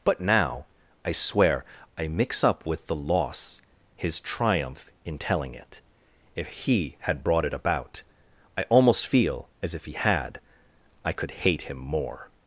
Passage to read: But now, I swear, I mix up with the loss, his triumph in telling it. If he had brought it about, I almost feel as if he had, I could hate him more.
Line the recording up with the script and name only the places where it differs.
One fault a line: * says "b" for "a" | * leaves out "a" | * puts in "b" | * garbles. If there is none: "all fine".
all fine